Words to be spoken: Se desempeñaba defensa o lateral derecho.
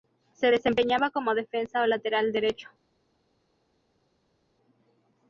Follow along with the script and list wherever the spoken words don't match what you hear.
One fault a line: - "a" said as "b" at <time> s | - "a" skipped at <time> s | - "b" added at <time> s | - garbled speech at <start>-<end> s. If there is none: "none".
- "como" added at 1.1 s